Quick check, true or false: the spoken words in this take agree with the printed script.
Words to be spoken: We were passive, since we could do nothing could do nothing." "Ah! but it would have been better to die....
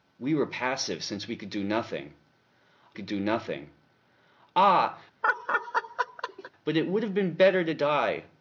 true